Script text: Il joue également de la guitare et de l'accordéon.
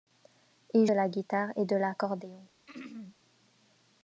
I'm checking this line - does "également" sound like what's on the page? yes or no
no